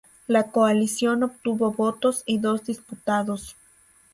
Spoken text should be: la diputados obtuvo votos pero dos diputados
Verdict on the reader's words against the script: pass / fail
fail